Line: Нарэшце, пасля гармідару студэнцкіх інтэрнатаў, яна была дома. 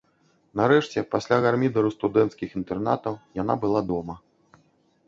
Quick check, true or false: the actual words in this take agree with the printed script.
true